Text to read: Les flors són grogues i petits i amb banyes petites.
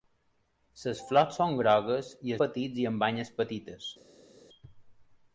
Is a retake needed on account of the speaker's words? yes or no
no